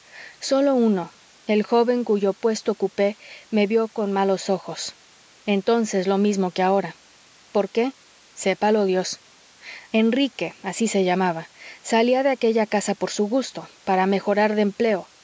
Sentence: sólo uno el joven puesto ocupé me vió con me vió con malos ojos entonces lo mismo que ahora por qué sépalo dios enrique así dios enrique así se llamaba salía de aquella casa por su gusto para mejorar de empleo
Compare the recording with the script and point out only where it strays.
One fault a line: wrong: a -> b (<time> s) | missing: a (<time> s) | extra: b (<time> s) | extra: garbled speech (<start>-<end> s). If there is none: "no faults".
extra: cuyo (2.0 s)
missing: me vió con (4.1 s)
missing: dios enrique así (10.9 s)